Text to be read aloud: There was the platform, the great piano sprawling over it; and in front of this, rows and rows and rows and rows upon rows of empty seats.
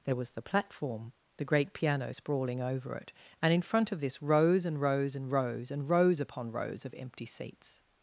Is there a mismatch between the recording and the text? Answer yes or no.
no